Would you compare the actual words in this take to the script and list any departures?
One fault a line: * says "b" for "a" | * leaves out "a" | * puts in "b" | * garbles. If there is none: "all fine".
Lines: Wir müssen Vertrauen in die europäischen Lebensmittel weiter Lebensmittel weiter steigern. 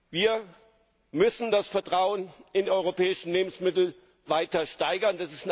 * puts in "das"
* leaves out "Lebensmittel weiter"